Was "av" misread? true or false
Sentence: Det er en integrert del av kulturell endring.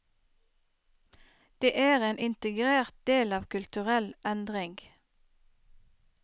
false